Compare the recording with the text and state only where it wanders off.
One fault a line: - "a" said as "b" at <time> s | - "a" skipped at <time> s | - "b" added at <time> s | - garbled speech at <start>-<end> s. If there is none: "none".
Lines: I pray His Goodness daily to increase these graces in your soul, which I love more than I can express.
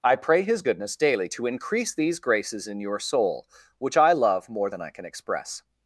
none